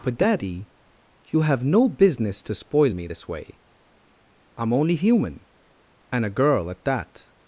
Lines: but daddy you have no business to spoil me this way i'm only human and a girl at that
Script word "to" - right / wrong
right